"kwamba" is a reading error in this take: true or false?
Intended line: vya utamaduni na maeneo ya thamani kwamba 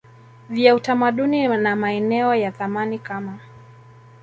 true